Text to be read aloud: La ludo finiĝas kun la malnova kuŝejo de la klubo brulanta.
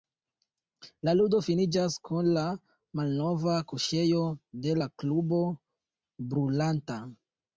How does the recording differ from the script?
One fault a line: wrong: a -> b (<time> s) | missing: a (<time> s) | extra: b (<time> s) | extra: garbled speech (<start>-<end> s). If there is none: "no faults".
no faults